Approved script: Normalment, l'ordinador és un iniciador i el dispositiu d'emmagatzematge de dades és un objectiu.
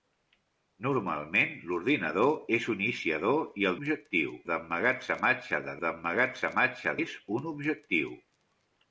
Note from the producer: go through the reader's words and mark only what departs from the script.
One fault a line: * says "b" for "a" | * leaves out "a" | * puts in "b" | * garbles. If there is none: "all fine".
* says "objectiu" for "dispositiu"
* says "d'emmagatzematge" for "dades"